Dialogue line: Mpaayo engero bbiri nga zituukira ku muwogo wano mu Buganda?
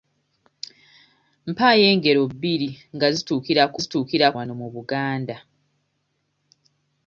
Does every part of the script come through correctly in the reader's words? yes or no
no